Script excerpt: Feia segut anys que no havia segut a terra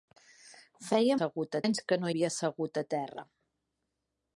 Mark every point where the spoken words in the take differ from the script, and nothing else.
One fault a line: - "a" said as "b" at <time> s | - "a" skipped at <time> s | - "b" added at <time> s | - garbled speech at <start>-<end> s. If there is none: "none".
none